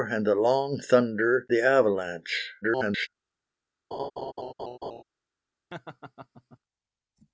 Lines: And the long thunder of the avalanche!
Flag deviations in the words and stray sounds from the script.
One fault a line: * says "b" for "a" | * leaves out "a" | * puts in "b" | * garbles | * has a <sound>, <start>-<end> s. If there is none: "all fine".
* leaves out "of"
* garbles
* has a laugh, 3.9-5.0 s
* has a laugh, 5.7-6.6 s